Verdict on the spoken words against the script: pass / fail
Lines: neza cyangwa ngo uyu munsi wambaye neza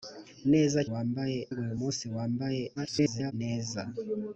fail